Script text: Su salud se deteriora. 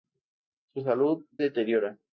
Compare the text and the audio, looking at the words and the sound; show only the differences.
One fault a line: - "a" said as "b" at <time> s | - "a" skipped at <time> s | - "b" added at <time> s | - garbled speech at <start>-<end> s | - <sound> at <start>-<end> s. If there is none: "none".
- "se" skipped at 1.2 s